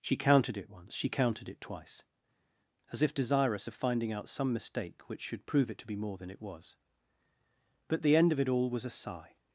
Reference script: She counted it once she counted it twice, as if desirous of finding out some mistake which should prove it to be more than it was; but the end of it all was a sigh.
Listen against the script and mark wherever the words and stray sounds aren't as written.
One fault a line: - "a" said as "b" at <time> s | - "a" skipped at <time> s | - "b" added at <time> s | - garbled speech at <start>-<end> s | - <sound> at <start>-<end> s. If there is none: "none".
none